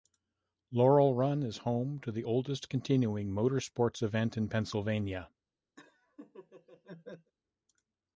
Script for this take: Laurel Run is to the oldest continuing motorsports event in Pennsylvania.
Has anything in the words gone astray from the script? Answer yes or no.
yes